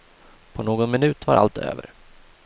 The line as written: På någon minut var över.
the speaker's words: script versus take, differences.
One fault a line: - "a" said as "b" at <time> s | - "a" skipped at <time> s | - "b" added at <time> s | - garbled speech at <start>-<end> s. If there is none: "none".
- "allt" added at 1.3 s